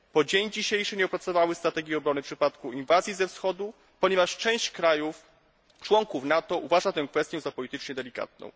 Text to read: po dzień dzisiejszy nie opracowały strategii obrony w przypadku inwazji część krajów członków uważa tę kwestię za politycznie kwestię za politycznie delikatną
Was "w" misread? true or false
false